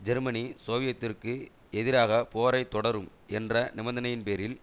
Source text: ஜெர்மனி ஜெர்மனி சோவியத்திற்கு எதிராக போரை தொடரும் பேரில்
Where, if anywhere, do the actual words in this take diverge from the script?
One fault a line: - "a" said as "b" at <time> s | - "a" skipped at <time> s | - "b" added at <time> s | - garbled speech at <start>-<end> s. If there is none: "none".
- "ஜெர்மனி" skipped at 0.4 s
- "என்ற நிபந்தனையின்" added at 3.3 s